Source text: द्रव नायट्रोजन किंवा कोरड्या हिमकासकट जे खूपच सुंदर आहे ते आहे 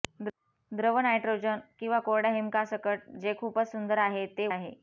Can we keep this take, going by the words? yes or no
yes